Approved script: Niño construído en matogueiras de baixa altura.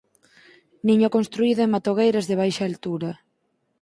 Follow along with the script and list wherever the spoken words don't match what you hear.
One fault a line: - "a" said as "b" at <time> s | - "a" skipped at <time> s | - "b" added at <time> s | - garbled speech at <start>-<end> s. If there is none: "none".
none